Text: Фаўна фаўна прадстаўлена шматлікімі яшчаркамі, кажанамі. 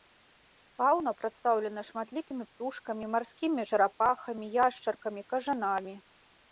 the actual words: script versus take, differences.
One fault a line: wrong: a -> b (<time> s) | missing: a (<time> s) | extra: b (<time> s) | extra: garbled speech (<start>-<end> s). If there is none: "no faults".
missing: фаўна (1.1 s)
extra: птушкамі марскімі чарапахамі (2.5 s)